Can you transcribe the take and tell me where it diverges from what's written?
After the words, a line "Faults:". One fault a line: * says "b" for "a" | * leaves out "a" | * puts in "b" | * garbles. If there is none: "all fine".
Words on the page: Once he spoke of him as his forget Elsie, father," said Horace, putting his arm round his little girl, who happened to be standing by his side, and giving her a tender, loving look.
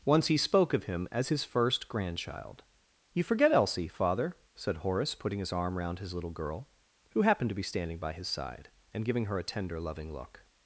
Once he spoke of him as his first grandchild. "You forget Elsie, father," said Horace, putting his arm round his little girl, who happened to be standing by his side, and giving her a tender, loving look.
Faults:
* puts in "first grandchild You"